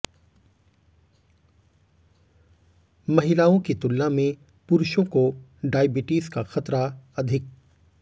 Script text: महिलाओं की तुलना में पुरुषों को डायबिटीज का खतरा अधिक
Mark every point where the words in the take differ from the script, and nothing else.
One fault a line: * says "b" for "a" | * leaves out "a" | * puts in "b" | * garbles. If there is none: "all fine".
all fine